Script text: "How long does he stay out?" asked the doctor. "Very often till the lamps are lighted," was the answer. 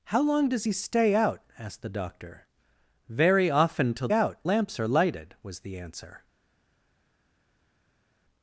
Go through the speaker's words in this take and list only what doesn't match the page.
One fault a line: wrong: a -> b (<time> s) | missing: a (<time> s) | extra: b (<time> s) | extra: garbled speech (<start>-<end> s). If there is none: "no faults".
wrong: the -> out (4.1 s)